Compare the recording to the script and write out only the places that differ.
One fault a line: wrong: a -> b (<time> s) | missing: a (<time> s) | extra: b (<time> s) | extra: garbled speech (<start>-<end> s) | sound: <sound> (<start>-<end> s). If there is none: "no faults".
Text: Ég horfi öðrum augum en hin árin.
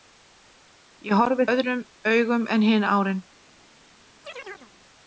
sound: chirp (4.2-4.7 s)